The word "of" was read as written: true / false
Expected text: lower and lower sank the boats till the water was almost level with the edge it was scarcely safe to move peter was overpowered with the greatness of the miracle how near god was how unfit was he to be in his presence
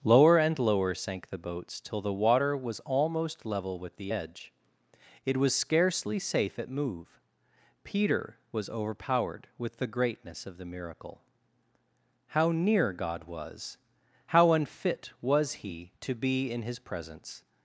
true